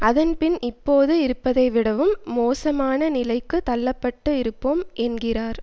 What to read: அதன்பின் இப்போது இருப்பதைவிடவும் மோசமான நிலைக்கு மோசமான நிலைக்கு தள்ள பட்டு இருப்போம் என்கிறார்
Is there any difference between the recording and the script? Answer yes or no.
yes